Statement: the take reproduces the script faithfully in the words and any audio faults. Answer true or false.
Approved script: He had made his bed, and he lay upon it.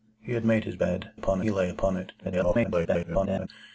false